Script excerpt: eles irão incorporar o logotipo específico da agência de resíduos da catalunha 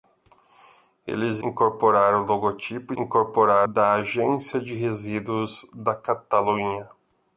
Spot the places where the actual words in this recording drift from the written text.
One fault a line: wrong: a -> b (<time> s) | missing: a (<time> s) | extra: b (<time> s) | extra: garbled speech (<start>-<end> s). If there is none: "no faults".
missing: irão (1.4 s)
wrong: específico -> incorporar (3.0 s)